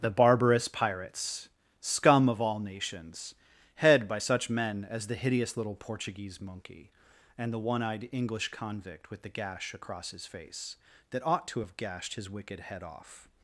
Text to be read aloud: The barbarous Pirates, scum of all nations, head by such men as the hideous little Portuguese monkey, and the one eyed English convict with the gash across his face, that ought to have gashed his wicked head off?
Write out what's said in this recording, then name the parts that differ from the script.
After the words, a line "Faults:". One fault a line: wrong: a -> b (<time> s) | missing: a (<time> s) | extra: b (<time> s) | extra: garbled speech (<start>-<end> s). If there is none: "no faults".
The barbarous Pirates, scum of all nations, head by such men as the hideous little Portuguese monkey, and the one eyed English convict with the gash across his face, that ought to have gashed his wicked head off?
Faults:
no faults